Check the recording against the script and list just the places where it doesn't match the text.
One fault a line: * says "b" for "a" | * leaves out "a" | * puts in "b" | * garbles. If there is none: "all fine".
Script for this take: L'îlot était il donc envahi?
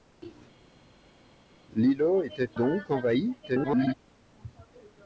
* leaves out "il"
* garbles